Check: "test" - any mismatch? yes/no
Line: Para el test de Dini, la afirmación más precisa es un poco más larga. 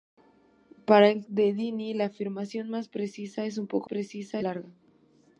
yes